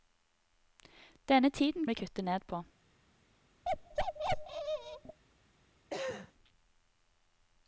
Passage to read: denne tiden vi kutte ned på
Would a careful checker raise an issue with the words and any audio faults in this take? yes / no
yes